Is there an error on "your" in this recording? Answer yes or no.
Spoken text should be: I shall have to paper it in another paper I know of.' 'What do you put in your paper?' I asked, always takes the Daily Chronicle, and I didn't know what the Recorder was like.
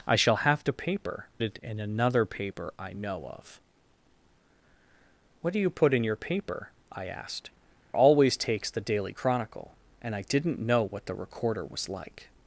no